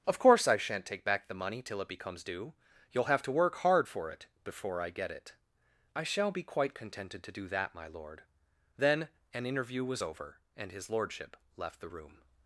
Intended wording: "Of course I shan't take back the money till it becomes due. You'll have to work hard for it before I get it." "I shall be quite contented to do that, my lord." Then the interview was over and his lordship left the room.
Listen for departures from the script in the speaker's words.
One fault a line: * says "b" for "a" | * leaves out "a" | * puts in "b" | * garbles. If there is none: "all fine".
* says "an" for "the"